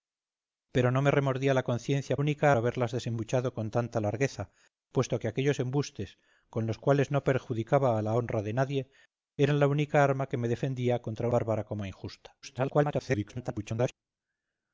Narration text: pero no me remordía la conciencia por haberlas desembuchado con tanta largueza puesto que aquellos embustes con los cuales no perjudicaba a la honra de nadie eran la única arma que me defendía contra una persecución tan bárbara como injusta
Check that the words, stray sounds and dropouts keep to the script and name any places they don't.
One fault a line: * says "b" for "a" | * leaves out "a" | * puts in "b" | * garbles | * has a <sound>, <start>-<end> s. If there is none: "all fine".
* says "única" for "por"
* leaves out "una persecución tan"
* garbles